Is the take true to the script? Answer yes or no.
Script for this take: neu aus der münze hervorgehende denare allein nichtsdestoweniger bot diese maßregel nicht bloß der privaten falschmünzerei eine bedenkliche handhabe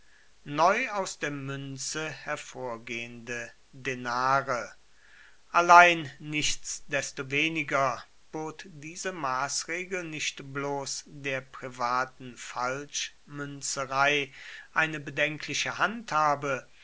yes